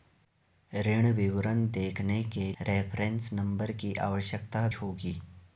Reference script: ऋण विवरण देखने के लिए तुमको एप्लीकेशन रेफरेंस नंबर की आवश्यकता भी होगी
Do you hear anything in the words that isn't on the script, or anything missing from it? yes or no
yes